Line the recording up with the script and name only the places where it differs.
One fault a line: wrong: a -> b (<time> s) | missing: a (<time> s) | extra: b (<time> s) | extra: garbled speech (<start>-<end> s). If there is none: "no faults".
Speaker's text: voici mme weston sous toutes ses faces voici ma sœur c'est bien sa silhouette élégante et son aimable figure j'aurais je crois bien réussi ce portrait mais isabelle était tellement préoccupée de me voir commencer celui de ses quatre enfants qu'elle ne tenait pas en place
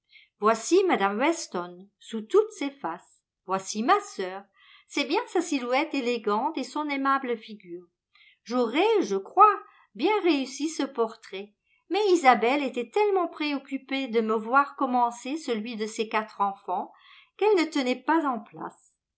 no faults